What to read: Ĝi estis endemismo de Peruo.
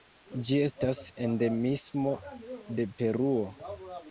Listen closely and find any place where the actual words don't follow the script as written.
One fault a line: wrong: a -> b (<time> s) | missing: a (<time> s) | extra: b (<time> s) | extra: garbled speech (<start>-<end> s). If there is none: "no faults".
wrong: estis -> estas (0.7 s)